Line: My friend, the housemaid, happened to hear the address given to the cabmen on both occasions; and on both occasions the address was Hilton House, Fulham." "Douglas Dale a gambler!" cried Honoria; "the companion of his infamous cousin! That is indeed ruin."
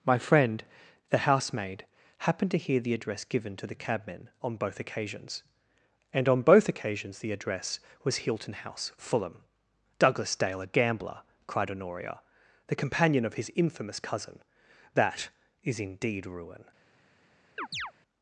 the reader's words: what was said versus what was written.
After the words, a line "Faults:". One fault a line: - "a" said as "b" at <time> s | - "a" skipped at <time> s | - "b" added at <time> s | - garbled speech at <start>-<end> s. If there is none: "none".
My friend, the housemaid, happened to hear the address given to the cabmen on both occasions; and on both occasions the address was Hilton House, Fulham." "Douglas Dale a gambler!" cried Honoria; "the companion of his infamous cousin! That is indeed ruin."
Faults:
none